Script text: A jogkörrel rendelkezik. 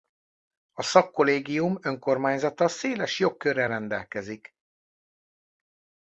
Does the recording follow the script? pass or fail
fail